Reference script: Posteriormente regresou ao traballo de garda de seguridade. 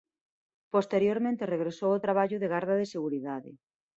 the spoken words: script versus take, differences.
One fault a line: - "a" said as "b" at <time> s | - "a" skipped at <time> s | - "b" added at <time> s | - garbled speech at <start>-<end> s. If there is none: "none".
none